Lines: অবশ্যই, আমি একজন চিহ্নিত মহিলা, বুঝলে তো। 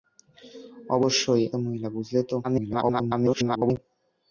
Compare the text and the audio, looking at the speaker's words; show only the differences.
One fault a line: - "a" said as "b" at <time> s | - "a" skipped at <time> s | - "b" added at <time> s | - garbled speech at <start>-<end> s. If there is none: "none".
- "আমি একজন চিহ্নিত" skipped at 1.4 s
- garbled speech at 2.4-3.8 s